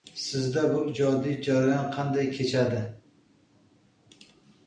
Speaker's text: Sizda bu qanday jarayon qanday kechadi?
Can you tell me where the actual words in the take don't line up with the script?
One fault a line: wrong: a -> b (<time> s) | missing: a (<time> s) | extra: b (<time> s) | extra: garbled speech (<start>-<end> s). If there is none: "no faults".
wrong: qanday -> ijodiy (0.9 s)